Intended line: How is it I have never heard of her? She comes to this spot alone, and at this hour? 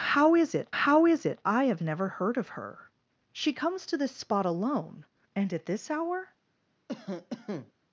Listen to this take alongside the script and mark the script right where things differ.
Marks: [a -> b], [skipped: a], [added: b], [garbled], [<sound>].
How is it [added: how is it] I have never heard of her? She comes to this spot alone, and at this hour? [cough]